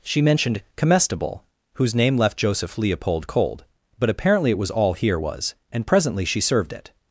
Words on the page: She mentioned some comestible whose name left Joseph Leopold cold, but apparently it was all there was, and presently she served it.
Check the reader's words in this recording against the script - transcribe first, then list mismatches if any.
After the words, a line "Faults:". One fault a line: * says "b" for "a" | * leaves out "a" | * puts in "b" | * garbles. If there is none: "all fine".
She mentioned comestible whose name left Joseph Leopold cold, but apparently it was all here was, and presently she served it.
Faults:
* leaves out "some"
* says "here" for "there"